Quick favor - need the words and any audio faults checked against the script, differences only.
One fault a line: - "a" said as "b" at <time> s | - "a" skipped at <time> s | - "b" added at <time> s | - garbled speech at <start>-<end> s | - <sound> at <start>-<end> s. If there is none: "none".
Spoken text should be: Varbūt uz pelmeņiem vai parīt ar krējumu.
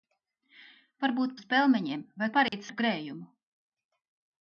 - dropout at 2.5-2.5 s